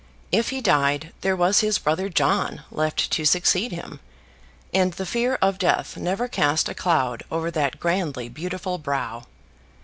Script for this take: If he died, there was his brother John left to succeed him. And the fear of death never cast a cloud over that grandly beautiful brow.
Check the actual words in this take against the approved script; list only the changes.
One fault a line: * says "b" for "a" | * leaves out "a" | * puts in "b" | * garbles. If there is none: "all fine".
all fine